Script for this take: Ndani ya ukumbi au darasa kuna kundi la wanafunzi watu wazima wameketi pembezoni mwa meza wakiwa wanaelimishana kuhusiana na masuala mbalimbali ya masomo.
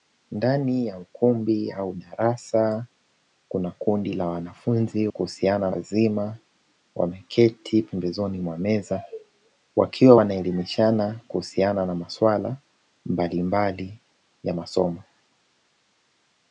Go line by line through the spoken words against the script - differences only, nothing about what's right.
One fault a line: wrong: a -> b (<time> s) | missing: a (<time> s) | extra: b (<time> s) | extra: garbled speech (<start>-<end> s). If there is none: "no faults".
wrong: watu -> kuhusiana (5.1 s)